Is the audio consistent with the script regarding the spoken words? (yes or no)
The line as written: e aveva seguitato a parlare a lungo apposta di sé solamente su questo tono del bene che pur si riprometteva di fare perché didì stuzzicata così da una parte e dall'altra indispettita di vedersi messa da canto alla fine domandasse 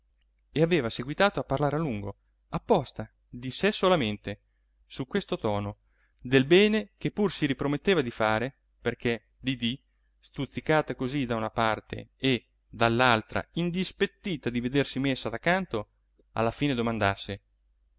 yes